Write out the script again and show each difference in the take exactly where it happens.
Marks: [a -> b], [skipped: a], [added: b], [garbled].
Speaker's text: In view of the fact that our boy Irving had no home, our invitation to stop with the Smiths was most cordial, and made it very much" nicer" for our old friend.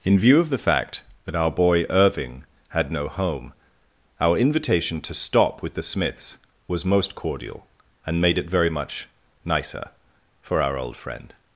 In view of the fact that our boy Irving had no home, our invitation to stop with the Smiths was most cordial, and made it very much" nicer" for our old friend.